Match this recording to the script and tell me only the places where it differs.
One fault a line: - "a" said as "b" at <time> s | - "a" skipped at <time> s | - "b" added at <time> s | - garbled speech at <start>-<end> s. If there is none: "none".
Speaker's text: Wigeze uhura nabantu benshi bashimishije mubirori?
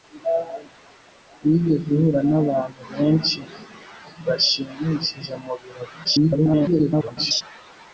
- garbled speech at 6.0-7.4 s